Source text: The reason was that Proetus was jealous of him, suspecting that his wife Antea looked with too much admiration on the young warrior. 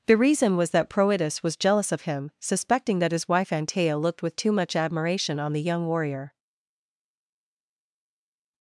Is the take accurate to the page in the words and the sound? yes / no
yes